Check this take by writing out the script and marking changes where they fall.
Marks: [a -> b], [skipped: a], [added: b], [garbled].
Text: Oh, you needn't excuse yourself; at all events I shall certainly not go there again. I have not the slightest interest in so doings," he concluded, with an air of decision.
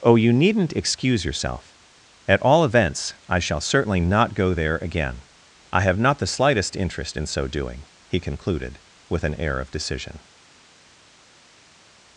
Oh, you needn't excuse yourself; at all events I shall certainly not go there again. I have not the slightest interest in so [doings," -> doing] he concluded, with an air of decision.